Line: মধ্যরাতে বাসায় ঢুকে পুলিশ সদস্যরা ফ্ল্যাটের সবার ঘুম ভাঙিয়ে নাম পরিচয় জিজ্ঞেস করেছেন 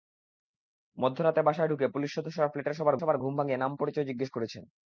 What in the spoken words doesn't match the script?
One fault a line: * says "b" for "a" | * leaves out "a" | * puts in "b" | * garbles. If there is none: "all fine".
* puts in "সবার"